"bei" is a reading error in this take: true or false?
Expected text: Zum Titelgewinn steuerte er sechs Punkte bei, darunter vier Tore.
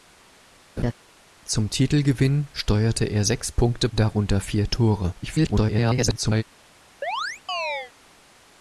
true